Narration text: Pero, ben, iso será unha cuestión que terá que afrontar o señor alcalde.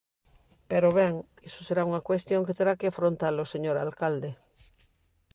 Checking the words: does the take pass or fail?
pass